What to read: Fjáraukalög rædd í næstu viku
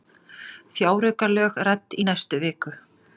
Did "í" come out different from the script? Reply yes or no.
no